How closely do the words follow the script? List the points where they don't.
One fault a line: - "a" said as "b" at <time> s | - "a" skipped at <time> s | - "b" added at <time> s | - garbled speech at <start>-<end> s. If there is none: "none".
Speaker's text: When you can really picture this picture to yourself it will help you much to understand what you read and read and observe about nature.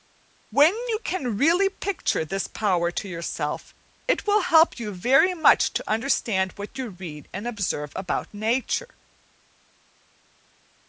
- "picture" said as "power" at 2.5 s
- "very" added at 4.9 s
- "read and" skipped at 7.5 s